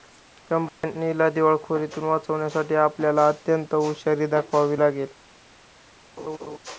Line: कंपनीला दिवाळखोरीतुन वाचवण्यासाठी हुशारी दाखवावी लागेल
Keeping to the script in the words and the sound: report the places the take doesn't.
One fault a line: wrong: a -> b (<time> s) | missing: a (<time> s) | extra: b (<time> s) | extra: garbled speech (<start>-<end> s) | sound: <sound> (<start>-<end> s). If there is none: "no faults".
sound: dropout (0.7-0.8 s)
extra: आपल्याला अत्यंत (2.8 s)
sound: laugh (6.2-6.6 s)